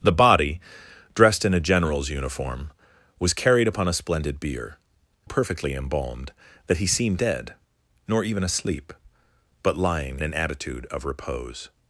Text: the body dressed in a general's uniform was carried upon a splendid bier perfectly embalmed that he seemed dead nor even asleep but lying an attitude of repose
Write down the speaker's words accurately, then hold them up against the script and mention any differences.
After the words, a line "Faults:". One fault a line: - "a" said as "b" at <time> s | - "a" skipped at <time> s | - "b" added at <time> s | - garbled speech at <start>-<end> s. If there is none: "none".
the body dressed in a general's uniform was carried upon a splendid bier perfectly embalmed that he seemed dead nor even asleep but lying an attitude of repose
Faults:
none